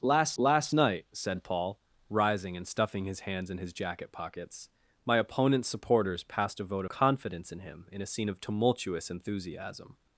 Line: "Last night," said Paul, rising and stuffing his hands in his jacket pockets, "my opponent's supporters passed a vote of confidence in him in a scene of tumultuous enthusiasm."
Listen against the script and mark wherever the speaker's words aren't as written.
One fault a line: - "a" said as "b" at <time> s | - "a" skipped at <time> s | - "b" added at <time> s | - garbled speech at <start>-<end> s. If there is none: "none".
- "last" added at 0.4 s
- "of" skipped at 6.8 s